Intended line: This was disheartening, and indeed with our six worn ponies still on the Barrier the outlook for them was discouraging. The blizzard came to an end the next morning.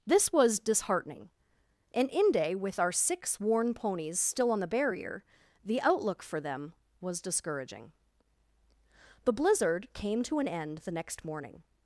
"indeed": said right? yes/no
no